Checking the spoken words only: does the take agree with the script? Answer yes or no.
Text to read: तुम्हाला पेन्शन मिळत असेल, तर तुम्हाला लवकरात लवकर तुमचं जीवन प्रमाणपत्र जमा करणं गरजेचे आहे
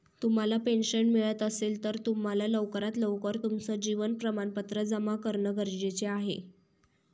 yes